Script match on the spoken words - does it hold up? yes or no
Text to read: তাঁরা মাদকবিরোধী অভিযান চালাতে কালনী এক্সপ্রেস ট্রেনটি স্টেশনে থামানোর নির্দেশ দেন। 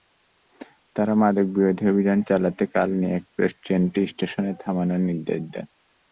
yes